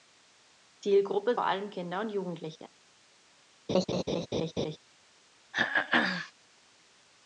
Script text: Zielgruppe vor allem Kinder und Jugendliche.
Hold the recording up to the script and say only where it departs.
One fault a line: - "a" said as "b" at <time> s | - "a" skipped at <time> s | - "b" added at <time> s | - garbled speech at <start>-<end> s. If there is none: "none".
none